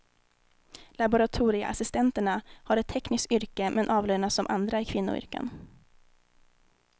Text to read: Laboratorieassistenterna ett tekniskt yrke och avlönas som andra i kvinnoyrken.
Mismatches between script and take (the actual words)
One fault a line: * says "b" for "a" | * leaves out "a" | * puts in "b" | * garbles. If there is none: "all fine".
* puts in "har"
* says "men" for "och"